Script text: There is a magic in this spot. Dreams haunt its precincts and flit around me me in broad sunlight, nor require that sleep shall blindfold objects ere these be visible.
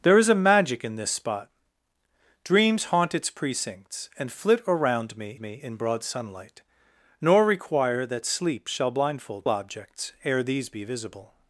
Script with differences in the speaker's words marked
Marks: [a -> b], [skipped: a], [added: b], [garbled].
There is a magic in this spot. Dreams haunt its precincts and flit around me me in broad sunlight, nor require that sleep shall blindfold objects ere these be visible.